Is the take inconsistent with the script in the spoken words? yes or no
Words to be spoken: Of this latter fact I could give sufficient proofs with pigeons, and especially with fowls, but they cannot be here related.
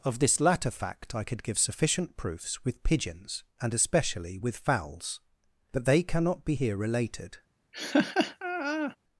no